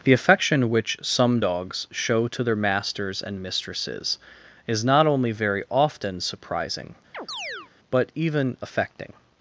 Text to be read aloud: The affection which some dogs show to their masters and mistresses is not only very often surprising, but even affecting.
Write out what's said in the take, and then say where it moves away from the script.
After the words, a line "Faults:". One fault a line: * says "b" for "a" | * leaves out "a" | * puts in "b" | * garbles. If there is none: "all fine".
The affection which some dogs show to their masters and mistresses is not only very often surprising, but even affecting.
Faults:
all fine